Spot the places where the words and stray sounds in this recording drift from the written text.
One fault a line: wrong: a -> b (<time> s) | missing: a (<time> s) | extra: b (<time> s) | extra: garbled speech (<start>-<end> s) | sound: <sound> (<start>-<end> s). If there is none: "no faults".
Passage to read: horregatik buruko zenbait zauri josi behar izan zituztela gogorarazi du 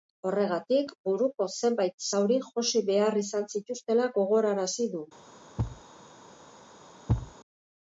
sound: thud (5.6-5.8 s)
sound: thud (7.1-7.3 s)